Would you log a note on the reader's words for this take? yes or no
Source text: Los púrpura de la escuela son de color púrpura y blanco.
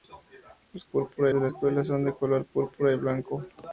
no